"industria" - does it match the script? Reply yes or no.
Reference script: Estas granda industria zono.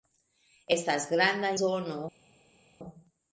no